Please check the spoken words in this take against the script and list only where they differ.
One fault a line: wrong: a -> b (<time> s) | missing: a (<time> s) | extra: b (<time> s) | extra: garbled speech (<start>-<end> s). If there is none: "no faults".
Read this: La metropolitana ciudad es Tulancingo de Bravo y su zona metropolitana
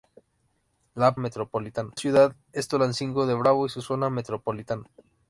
no faults